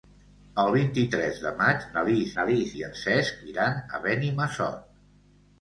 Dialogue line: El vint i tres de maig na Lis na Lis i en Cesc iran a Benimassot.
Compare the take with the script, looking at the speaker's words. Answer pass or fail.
pass